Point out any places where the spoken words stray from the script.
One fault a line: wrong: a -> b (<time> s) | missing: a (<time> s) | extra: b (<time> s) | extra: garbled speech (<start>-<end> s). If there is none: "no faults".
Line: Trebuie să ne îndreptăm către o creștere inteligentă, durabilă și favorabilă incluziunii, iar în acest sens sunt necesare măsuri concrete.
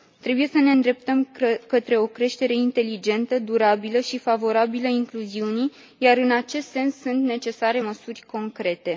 no faults